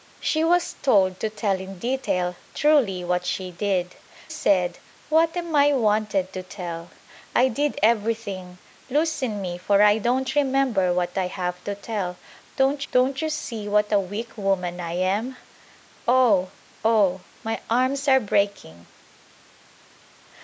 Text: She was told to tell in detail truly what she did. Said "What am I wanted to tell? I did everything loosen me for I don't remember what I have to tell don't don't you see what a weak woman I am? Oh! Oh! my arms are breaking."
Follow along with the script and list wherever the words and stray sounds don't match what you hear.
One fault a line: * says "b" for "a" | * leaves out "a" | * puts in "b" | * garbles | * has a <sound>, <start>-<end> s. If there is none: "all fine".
all fine